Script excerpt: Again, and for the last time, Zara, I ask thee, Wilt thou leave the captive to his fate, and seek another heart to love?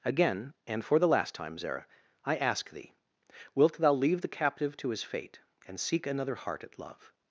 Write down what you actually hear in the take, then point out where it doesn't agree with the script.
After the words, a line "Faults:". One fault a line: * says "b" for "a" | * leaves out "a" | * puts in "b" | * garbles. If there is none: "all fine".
Again, and for the last time, Zara, I ask thee, Wilt thou leave the captive to his fate, and seek another heart at love?
Faults:
* says "at" for "to"